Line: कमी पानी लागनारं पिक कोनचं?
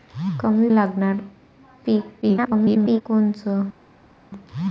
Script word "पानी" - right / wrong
wrong